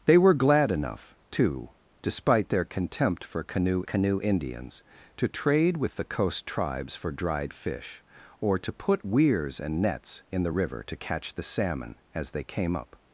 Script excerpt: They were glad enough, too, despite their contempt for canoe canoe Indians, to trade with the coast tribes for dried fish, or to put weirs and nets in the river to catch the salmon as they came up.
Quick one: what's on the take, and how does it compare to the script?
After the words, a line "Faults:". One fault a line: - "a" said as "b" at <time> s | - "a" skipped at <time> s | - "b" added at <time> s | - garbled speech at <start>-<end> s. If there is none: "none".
They were glad enough, too, despite their contempt for canoe canoe Indians, to trade with the coast tribes for dried fish, or to put weirs and nets in the river to catch the salmon as they came up.
Faults:
none